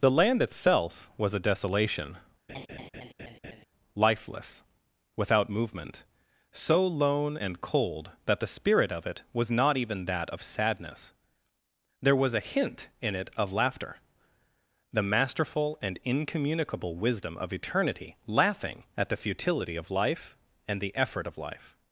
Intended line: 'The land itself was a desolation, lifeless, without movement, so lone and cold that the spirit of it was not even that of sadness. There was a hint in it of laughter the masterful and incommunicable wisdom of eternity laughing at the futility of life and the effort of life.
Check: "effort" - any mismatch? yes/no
no